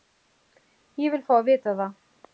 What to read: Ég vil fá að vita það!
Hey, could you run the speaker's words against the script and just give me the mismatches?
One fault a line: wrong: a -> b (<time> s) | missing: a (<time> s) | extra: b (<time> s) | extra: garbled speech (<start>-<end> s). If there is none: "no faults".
no faults